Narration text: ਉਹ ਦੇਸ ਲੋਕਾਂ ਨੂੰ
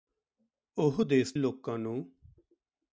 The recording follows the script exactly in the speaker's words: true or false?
true